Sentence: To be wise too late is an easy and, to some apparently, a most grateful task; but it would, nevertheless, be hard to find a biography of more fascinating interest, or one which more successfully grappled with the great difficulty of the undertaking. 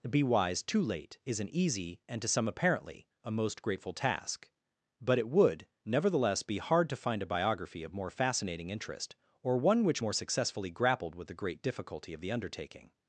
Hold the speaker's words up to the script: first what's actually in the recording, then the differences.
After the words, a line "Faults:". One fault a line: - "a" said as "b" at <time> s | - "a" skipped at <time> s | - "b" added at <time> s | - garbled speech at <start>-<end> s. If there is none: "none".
be wise too late is an easy and, to some apparently, a most grateful task; but it would, nevertheless, be hard to find a biography of more fascinating interest, or one which more successfully grappled with the great difficulty of the undertaking.
Faults:
- "To" skipped at 0.1 s